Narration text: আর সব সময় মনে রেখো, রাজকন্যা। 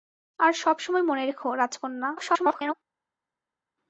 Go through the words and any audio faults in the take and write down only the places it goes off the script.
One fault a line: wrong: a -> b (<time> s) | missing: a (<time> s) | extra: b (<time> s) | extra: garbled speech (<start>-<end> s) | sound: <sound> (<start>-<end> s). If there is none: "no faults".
extra: garbled speech (2.2-2.7 s)